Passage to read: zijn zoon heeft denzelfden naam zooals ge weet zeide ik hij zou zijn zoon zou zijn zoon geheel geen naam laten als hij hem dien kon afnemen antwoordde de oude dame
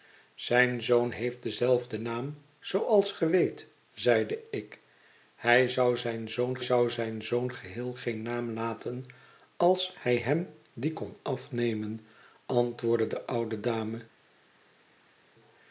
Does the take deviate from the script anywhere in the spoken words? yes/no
no